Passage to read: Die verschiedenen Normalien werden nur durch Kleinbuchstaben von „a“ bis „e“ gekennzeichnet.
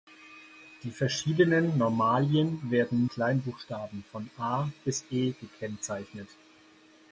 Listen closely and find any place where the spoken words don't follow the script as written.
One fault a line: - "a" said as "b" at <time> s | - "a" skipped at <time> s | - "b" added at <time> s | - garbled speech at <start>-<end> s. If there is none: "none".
- "nur durch" skipped at 3.1 s